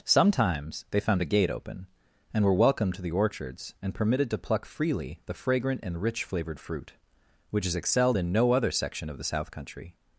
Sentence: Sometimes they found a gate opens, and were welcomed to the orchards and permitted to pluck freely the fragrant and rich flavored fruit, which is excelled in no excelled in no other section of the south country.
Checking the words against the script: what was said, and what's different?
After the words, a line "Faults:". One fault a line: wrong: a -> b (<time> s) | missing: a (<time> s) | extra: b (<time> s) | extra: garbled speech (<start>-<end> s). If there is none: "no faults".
Sometimes they found a gate open, and were welcomed to the orchards and permitted to pluck freely the fragrant and rich flavored fruit, which is excelled in no other section of the south country.
Faults:
wrong: opens -> open (1.5 s)
missing: excelled in no (8.5 s)